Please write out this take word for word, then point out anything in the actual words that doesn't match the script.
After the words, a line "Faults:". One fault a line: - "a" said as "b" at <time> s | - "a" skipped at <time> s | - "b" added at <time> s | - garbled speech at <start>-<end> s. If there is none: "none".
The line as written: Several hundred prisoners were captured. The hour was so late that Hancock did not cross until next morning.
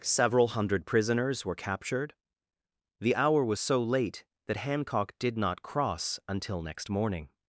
Several hundred prisoners were captured. The hour was so late that Hancock did not cross until next morning.
Faults:
none